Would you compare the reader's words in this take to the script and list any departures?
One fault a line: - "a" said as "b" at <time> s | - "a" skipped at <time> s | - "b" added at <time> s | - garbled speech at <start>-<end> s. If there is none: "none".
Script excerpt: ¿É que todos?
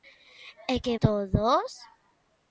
none